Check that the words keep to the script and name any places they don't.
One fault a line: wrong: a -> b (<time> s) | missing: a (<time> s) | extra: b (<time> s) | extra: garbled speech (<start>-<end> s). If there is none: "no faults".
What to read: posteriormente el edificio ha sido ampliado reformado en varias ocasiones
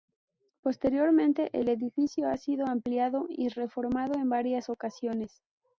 extra: y (3.3 s)